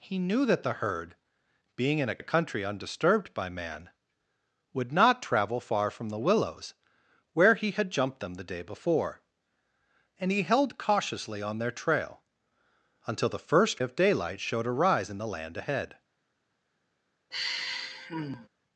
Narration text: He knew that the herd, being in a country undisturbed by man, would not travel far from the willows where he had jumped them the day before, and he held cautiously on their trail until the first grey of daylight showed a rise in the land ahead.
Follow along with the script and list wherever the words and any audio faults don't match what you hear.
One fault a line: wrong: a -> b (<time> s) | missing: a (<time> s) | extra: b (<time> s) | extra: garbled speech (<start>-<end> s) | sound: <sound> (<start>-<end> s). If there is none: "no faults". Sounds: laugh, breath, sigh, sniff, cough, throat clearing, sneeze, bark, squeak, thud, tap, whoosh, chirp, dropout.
extra: a (2.2 s)
missing: grey (13.8 s)
sound: sigh (17.3-18.5 s)